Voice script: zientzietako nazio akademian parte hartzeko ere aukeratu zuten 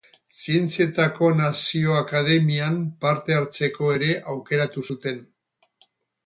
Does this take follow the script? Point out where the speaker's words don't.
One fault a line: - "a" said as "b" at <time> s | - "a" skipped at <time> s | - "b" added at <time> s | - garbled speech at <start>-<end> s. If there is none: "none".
none